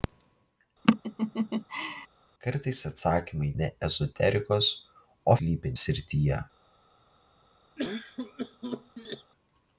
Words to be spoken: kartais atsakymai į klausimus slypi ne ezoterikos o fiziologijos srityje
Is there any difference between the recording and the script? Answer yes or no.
yes